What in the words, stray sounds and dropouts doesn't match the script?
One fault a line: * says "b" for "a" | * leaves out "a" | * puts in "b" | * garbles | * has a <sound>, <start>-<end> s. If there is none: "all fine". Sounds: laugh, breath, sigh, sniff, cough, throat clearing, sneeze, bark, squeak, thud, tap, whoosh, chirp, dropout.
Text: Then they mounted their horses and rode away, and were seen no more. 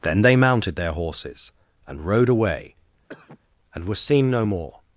* has a cough, 3.1-3.4 s